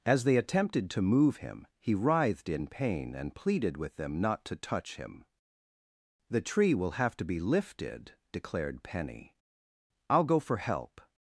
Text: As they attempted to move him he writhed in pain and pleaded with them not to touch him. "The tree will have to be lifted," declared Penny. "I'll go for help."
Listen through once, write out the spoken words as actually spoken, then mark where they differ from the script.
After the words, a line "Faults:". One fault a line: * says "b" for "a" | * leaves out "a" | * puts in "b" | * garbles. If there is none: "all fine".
As they attempted to move him he writhed in pain and pleaded with them not to touch him. "The tree will have to be lifted," declared Penny. "I'll go for help."
Faults:
all fine